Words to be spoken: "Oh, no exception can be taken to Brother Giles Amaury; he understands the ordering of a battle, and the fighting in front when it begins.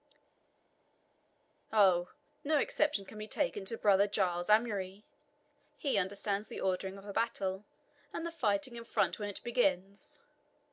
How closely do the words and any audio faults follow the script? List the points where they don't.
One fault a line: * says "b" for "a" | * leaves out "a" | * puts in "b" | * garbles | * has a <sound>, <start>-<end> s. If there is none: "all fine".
all fine